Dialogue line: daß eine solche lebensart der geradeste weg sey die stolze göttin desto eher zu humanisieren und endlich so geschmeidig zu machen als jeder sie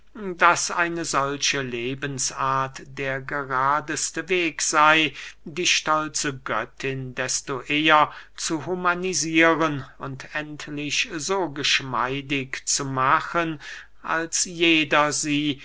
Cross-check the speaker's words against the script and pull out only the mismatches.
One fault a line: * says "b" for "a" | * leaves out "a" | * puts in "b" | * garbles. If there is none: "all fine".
all fine